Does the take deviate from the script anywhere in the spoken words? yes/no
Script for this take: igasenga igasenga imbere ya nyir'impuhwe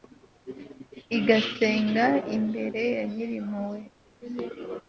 yes